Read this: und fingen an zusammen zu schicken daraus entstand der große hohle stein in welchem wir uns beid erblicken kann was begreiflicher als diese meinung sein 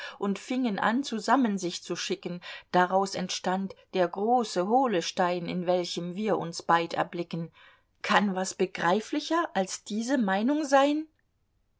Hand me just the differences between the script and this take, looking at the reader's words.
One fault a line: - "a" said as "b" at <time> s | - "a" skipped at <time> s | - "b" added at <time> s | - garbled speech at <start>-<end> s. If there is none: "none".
- "sich" added at 1.6 s